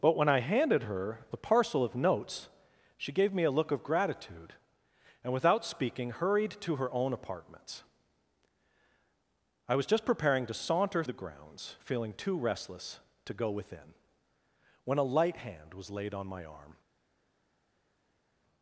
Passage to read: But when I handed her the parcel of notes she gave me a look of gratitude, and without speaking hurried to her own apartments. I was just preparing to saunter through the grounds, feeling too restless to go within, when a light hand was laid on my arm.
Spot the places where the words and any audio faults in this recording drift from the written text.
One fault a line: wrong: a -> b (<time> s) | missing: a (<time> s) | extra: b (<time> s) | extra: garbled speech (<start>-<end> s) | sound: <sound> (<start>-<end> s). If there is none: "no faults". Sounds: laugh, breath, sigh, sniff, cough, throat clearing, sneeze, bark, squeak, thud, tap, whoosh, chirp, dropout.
missing: through (11.0 s)